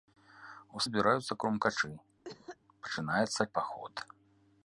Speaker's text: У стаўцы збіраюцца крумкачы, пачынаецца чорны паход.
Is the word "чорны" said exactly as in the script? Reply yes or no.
no